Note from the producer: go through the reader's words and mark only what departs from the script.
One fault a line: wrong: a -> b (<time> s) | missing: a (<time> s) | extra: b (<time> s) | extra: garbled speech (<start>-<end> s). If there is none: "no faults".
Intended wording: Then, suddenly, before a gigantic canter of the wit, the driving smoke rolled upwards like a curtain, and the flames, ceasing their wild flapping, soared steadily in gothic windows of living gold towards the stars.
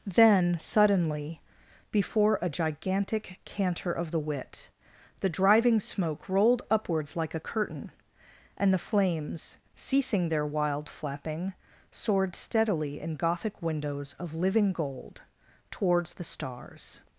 no faults